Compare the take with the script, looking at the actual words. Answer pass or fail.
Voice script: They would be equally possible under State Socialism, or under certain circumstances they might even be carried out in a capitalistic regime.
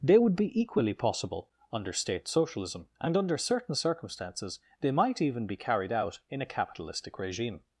fail